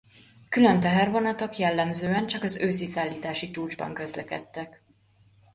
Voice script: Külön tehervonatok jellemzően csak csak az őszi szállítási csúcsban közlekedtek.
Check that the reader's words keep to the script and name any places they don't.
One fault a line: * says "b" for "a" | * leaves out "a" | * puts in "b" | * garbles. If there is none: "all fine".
* leaves out "csak"